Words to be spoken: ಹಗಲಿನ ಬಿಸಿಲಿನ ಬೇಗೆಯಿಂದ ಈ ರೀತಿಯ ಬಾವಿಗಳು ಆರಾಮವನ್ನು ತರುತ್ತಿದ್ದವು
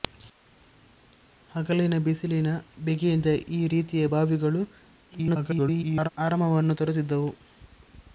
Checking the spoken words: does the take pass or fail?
fail